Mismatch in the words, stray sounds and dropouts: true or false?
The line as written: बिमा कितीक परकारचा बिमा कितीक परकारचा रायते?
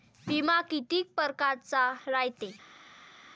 true